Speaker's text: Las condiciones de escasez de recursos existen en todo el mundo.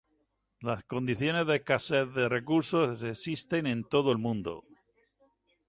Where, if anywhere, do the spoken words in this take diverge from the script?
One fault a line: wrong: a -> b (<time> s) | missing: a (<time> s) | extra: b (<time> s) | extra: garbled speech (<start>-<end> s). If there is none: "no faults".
no faults